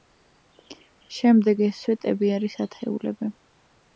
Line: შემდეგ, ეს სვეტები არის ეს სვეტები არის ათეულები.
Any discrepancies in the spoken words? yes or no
yes